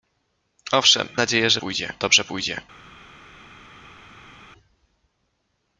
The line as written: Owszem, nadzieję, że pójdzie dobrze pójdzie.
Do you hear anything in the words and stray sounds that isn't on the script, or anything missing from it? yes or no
no